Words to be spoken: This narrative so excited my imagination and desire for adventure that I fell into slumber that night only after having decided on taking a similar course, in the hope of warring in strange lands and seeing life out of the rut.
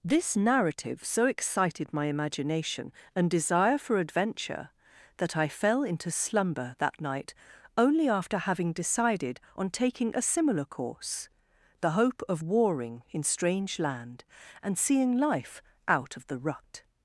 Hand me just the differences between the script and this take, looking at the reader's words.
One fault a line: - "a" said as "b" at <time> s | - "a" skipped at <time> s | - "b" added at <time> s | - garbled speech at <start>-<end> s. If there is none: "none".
- "in" skipped at 11.3 s
- "lands" said as "land" at 13.8 s